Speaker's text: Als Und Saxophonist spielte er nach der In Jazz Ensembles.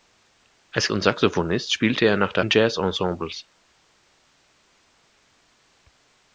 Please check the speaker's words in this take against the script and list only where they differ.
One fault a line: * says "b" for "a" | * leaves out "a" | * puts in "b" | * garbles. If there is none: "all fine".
all fine